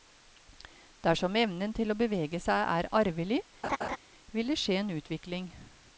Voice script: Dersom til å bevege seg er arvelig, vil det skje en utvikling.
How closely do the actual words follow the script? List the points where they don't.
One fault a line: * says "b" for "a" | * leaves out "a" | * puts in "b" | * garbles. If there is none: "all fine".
* puts in "evnen"